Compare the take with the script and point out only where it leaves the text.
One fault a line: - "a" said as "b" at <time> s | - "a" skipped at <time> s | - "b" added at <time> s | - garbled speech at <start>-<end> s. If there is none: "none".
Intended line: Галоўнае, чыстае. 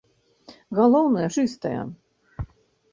none